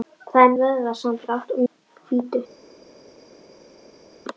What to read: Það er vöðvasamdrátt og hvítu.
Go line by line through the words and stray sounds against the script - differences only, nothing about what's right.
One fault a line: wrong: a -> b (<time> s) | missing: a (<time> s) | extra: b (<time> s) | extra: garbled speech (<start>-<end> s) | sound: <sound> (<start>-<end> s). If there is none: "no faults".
no faults